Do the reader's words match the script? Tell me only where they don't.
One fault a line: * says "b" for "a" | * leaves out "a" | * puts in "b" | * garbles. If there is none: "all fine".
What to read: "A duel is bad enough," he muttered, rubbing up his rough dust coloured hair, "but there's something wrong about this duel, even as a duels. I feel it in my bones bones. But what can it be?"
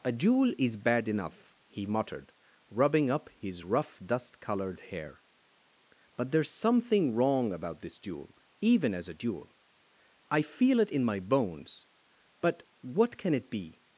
* says "duel" for "duels"
* leaves out "bones"